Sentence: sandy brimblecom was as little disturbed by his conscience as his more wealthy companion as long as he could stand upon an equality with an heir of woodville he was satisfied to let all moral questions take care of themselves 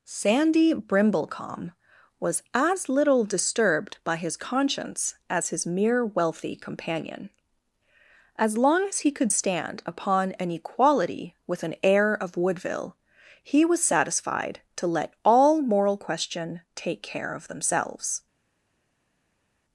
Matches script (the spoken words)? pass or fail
fail